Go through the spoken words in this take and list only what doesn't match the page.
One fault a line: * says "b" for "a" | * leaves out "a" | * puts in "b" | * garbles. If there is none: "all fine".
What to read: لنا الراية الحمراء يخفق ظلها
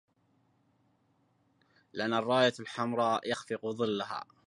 all fine